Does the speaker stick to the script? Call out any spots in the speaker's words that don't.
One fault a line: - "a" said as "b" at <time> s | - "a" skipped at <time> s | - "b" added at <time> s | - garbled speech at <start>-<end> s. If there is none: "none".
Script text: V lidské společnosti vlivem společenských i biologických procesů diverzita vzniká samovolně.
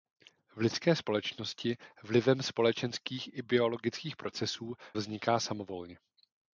- "diverzita" skipped at 4.7 s